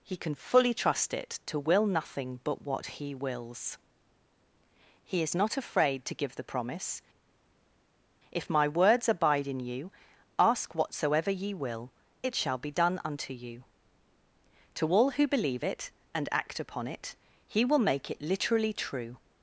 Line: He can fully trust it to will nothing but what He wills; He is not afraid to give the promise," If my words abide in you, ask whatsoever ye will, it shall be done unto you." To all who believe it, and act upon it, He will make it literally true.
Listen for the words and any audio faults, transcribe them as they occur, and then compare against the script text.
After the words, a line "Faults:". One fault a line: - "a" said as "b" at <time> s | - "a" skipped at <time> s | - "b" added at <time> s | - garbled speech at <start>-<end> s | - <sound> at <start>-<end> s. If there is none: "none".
He can fully trust it to will nothing but what He wills; He is not afraid to give the promise," If my words abide in you, ask whatsoever ye will, it shall be done unto you." To all who believe it, and act upon it, He will make it literally true.
Faults:
none